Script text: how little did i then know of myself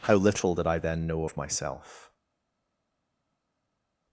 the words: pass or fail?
pass